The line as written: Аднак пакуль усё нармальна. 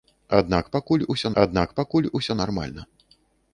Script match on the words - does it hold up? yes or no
no